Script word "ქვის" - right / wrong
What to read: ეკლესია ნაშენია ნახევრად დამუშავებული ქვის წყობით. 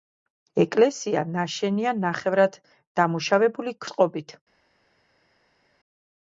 wrong